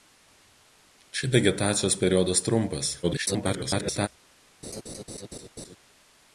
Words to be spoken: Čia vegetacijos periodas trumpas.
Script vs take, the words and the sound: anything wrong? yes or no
yes